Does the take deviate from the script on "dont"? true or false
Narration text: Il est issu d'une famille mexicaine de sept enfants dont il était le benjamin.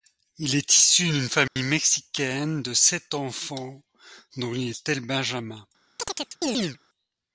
false